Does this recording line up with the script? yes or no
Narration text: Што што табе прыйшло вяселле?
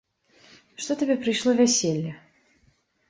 no